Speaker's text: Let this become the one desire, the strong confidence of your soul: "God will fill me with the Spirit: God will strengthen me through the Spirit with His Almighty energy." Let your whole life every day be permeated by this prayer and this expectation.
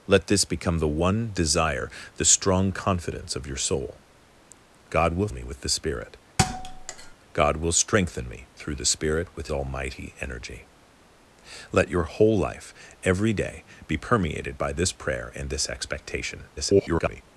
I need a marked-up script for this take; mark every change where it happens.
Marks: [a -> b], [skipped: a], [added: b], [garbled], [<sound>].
Let this become the one desire, the strong confidence of your soul: "God will [skipped: fill] me with the Spirit: [thud] God will strengthen me through the Spirit with [skipped: His] Almighty energy." Let your whole life every day be permeated by this prayer and this expectation. [garbled]